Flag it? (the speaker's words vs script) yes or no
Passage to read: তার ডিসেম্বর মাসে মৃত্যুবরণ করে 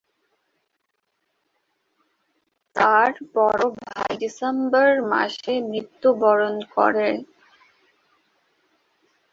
yes